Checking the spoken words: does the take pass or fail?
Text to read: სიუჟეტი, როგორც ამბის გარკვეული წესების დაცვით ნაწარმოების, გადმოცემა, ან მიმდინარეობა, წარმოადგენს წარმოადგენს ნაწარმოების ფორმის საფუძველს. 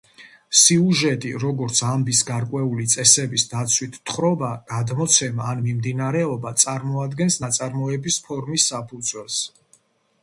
fail